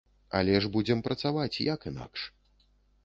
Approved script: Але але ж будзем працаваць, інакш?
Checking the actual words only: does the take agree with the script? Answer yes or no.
no